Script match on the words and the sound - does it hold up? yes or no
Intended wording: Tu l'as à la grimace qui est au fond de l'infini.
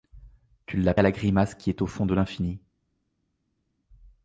yes